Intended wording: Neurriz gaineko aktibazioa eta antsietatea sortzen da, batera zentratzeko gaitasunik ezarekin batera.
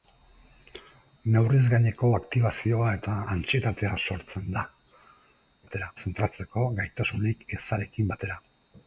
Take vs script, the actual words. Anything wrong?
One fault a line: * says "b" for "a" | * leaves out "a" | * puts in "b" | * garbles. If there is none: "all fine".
all fine